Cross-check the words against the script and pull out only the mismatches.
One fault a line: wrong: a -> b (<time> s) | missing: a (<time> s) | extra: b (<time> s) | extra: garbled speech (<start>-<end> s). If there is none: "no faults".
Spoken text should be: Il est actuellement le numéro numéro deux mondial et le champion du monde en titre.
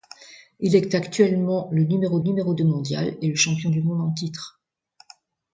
no faults